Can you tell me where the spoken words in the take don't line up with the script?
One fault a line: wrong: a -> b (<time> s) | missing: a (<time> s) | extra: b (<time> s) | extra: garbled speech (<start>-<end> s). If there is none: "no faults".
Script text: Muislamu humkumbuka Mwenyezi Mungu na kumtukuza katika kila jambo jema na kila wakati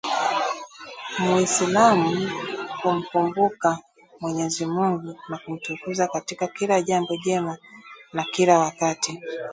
no faults